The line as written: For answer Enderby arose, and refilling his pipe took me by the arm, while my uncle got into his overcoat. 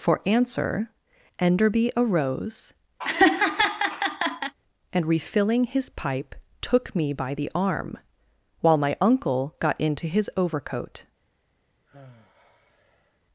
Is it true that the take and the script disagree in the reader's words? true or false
false